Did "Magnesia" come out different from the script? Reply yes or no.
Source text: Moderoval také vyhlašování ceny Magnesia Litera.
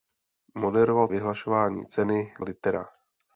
yes